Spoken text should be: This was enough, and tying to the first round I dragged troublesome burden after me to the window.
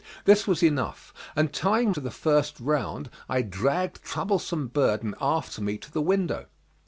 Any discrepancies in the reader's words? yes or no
no